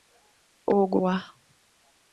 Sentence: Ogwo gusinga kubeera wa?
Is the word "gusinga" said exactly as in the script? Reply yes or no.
no